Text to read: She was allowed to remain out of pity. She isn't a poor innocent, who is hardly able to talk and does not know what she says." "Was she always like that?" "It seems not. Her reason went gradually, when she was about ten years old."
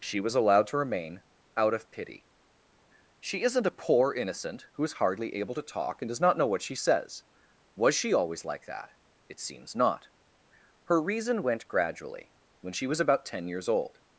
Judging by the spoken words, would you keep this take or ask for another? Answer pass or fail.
pass